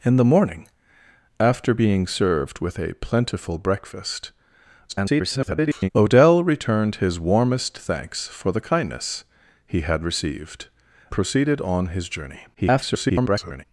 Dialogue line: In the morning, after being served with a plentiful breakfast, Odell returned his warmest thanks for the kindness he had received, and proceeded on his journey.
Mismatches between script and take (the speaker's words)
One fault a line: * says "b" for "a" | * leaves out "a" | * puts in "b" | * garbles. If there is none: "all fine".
* garbles
* leaves out "and"
* garbles